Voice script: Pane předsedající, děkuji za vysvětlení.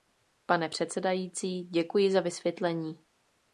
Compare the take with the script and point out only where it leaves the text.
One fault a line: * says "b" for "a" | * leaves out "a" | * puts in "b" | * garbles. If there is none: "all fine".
all fine